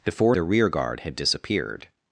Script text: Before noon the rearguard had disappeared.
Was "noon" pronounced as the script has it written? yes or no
no